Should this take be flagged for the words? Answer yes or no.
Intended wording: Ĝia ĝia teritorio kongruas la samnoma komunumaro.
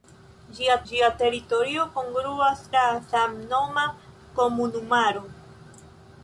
no